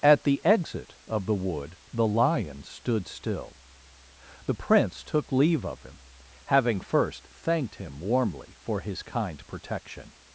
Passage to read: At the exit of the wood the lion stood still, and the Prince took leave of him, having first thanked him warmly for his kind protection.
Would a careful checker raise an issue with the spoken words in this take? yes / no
yes